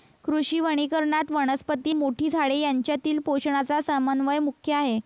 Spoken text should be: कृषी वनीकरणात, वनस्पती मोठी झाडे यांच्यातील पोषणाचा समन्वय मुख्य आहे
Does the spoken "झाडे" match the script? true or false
true